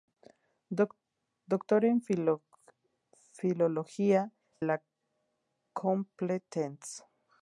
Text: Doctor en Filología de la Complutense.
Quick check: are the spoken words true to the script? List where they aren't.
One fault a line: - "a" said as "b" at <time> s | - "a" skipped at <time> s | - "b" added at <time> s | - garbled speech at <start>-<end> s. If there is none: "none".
- "de" skipped at 4.3 s